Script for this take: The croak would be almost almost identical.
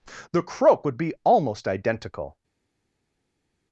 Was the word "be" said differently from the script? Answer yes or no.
no